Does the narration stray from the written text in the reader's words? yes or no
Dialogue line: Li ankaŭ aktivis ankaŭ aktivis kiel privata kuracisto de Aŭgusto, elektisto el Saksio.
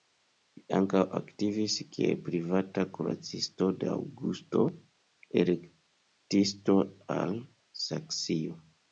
yes